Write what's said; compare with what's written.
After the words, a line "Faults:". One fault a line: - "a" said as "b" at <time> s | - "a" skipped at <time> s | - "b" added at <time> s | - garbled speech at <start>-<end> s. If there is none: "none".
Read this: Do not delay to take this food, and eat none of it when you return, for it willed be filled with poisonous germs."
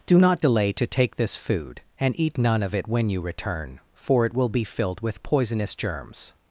Do not delay to take this food, and eat none of it when you return, for it will be filled with poisonous germs."
Faults:
- "willed" said as "will" at 4.3 s